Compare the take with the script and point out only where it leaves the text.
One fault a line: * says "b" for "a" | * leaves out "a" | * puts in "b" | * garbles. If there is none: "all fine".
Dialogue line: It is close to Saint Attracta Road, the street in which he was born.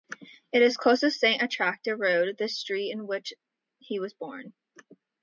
all fine